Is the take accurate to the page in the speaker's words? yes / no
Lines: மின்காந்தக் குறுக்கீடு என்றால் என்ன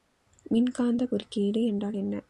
yes